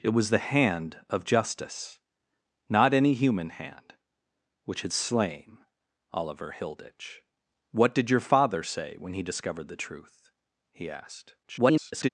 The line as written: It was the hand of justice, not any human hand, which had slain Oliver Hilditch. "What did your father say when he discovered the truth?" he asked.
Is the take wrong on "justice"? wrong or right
right